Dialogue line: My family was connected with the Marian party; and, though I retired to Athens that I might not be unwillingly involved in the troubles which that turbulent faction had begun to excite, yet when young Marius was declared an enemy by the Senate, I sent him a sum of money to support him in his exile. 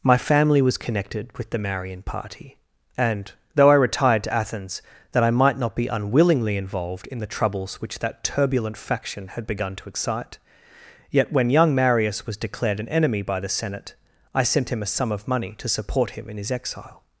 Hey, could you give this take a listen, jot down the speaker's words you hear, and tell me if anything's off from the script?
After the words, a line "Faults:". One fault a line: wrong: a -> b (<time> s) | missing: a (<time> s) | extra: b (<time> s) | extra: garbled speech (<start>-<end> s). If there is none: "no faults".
My family was connected with the Marian party; and, though I retired to Athens that I might not be unwillingly involved in the troubles which that turbulent faction had begun to excite, yet when young Marius was declared an enemy by the Senate, I sent him a sum of money to support him in his exile.
Faults:
no faults